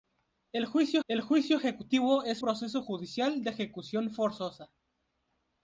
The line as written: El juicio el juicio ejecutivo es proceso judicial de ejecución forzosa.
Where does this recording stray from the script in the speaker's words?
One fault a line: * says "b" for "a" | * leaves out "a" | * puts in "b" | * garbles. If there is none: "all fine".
all fine